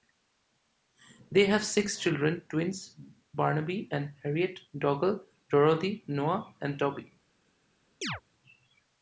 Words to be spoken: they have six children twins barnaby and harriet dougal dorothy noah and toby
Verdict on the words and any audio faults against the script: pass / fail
fail